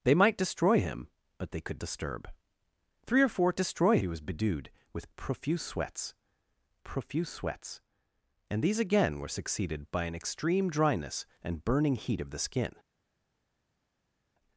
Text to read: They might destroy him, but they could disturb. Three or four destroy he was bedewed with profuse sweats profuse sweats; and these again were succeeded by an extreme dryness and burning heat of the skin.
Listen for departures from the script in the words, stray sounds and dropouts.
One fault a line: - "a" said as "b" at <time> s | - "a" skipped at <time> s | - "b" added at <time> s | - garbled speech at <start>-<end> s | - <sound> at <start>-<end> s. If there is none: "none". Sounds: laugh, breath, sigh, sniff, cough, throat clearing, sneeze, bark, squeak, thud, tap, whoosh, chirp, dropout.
none